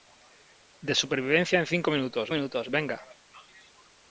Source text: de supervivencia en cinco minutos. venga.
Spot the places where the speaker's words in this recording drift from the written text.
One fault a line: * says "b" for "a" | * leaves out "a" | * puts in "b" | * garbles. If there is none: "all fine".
* puts in "minutos"